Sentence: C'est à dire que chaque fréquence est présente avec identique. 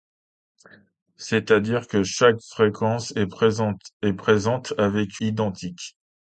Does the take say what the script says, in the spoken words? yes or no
yes